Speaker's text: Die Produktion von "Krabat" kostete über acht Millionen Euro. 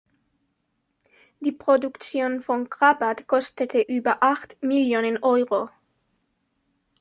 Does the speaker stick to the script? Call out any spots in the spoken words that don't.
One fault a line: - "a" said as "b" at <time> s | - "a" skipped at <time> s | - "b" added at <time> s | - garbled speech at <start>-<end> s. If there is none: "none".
none